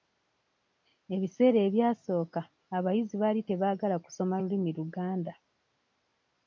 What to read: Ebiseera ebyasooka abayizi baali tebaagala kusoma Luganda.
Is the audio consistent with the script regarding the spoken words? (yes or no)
no